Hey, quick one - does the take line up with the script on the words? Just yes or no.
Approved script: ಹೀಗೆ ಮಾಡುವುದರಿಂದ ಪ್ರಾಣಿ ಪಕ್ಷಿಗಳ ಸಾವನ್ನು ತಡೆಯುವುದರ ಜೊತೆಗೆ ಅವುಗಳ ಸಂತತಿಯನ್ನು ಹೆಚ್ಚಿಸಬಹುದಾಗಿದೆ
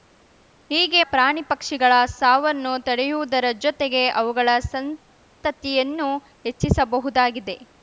no